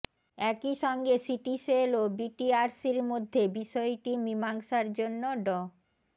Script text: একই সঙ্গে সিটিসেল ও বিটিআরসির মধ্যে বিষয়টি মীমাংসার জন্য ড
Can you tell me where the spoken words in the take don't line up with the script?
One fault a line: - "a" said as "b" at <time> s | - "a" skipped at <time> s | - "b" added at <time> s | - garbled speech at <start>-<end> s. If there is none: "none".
none